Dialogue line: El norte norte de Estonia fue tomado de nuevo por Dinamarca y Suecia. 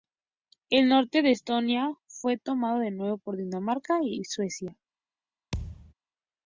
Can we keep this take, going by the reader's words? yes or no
no